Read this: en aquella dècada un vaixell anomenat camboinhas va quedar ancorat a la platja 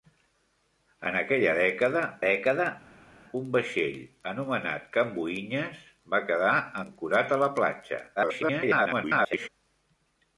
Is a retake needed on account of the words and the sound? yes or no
yes